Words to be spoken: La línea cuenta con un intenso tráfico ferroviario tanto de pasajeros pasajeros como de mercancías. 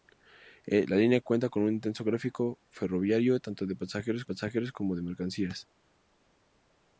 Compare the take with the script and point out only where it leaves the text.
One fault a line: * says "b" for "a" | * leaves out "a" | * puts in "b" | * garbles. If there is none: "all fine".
all fine